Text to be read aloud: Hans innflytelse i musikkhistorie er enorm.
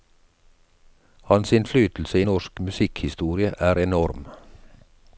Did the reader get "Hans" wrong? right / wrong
right